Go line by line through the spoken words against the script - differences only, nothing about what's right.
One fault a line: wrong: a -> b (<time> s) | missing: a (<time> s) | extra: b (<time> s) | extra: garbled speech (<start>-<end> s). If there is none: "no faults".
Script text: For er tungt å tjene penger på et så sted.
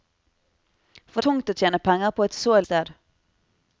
no faults